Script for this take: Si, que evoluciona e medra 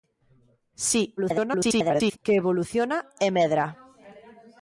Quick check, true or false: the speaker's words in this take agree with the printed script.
false